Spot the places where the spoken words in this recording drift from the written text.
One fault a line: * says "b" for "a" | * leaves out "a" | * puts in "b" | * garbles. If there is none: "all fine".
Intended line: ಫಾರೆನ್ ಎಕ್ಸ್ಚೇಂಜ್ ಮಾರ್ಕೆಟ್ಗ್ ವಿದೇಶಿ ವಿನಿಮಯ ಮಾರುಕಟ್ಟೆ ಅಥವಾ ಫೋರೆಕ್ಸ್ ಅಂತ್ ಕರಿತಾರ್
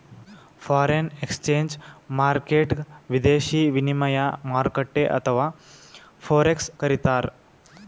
* leaves out "ಅಂತ್"